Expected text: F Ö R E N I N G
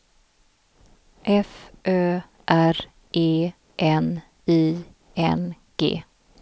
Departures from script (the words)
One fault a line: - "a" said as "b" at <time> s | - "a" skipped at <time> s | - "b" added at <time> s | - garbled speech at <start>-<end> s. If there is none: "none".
none